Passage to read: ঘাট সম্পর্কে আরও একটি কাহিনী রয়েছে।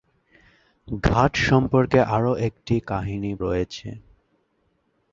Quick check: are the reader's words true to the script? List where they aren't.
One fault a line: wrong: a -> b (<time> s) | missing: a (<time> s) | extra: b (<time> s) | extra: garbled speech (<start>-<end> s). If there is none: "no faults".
no faults